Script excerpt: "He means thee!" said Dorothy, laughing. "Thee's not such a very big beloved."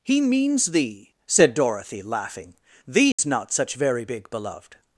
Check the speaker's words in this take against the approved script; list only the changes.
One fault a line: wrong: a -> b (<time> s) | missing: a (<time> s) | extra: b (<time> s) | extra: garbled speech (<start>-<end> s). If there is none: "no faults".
missing: a (3.8 s)